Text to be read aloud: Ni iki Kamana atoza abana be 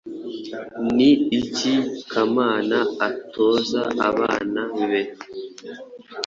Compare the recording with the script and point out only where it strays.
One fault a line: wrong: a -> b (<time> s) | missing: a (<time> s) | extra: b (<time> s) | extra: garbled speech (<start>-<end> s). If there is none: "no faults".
no faults